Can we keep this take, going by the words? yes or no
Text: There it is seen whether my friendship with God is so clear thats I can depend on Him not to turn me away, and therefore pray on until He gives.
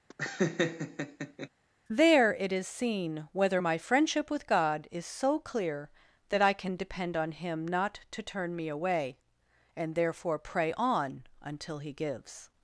no